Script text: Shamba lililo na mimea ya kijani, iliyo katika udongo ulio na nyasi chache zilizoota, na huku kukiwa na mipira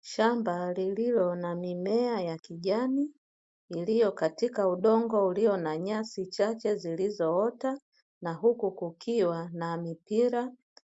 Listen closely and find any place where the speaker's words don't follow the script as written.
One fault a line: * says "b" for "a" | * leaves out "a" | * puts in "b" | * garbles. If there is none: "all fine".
all fine